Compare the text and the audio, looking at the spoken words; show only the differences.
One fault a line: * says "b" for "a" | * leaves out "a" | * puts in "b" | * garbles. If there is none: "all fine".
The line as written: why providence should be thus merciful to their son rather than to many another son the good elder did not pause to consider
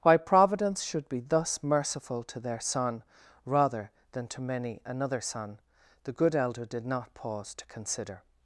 all fine